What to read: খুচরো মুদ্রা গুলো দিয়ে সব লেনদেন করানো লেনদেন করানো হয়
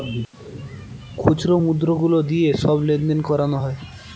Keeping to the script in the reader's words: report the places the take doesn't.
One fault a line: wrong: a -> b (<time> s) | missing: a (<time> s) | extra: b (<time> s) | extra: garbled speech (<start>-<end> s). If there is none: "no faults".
missing: লেনদেন করানো (3.6 s)